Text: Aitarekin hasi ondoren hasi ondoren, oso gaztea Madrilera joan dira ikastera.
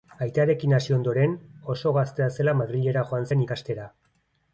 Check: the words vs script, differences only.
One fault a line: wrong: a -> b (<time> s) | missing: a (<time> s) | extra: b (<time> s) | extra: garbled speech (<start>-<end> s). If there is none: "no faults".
missing: hasi ondoren (1.4 s)
extra: zela (2.4 s)
wrong: dira -> zen (3.3 s)